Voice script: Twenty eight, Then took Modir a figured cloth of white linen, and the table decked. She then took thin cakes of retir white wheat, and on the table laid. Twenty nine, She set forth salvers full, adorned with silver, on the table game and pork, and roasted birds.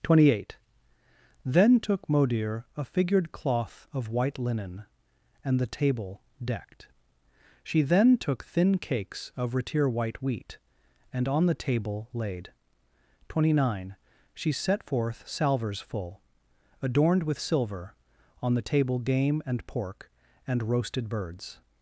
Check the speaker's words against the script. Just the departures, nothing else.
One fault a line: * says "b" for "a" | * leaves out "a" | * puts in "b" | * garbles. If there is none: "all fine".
all fine